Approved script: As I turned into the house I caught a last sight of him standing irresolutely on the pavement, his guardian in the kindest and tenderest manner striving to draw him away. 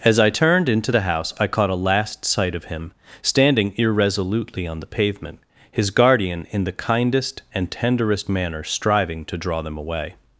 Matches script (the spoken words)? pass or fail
fail